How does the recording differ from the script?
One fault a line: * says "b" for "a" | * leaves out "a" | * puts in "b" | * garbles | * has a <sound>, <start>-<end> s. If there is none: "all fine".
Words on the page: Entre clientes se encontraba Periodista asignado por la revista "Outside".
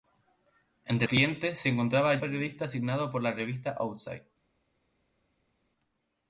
all fine